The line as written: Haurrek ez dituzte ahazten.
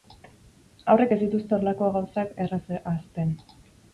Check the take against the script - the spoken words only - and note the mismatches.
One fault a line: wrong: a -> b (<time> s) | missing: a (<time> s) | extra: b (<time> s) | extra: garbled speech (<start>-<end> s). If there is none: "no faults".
extra: horrelako gauzak erraz (1.6 s)